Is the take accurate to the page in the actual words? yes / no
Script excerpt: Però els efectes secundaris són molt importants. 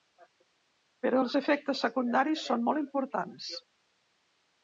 yes